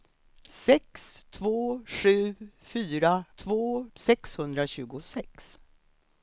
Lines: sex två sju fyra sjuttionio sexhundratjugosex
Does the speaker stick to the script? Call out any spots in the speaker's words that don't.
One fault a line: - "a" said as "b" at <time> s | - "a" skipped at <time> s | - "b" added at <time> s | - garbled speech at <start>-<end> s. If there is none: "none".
- "sjuttionio" said as "två" at 3.3 s